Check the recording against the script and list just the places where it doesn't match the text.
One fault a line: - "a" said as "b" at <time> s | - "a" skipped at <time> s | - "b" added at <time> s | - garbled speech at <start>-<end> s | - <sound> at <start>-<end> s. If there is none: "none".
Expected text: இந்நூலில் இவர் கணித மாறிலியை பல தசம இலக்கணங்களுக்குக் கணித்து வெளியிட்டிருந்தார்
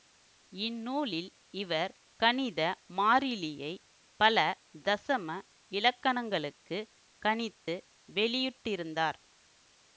- dropout at 7.6-7.7 s